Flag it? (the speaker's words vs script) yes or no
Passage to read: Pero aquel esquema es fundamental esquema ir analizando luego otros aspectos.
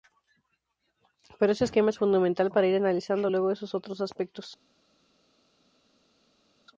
yes